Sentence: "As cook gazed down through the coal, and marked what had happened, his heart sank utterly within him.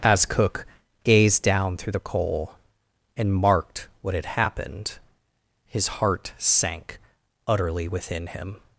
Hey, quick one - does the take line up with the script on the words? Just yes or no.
yes